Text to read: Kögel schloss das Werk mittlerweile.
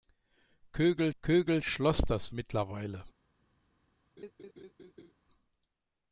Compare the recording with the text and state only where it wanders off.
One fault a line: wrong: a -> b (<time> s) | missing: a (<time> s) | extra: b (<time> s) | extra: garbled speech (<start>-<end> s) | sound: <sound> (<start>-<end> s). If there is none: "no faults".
extra: kögel (1.2 s)
missing: Werk (2.3 s)
sound: laugh (4.2-5.1 s)